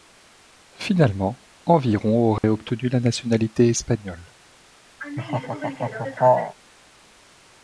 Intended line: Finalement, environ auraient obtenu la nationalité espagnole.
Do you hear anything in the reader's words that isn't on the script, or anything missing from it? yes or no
no